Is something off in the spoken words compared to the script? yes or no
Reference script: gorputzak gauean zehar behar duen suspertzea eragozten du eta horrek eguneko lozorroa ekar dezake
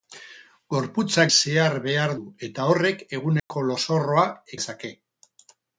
yes